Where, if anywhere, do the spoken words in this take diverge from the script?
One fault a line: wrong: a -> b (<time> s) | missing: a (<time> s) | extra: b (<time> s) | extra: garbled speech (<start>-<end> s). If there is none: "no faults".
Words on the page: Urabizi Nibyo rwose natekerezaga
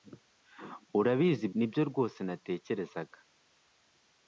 no faults